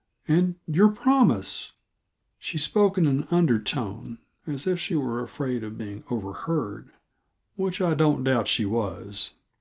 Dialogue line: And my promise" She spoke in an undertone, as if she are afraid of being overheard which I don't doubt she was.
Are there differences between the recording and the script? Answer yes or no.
yes